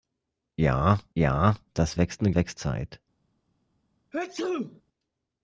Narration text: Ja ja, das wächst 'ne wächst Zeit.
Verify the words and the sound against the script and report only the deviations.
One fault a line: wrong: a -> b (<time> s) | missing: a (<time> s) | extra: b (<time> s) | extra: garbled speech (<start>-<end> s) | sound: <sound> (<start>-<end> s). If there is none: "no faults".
sound: sneeze (4.1-4.8 s)